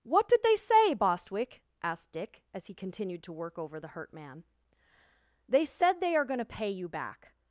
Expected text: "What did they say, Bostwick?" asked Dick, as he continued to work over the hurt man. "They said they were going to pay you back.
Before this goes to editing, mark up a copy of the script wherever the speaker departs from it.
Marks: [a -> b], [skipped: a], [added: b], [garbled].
"What did they say, Bostwick?" asked Dick, as he continued to work over the hurt man. "They said they [were -> are] going to pay you back.